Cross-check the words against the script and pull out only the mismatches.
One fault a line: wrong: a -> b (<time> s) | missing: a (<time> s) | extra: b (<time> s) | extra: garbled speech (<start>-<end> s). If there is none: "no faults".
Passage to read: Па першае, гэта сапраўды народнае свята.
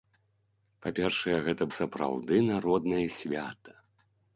no faults